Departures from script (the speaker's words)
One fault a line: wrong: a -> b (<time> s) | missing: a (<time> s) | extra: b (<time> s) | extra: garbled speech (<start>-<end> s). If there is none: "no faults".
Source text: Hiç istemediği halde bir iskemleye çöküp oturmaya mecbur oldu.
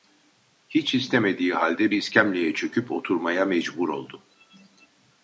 missing: bir (1.9 s)